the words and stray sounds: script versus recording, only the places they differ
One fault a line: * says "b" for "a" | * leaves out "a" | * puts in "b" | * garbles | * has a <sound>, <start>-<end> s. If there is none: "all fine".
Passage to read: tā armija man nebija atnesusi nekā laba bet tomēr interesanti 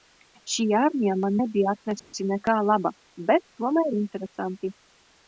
* says "šī" for "tā"
* has a dropout, 2.0-2.1 s